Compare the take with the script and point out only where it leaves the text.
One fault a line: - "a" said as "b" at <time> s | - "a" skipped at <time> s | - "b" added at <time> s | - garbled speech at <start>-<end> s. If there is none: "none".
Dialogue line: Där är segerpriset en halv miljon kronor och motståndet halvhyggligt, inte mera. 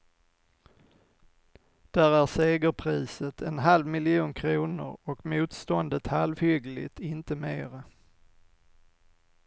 none